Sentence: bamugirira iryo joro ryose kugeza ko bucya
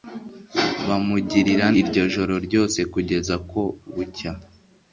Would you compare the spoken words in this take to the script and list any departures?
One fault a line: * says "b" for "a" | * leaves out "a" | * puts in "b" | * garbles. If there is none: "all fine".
all fine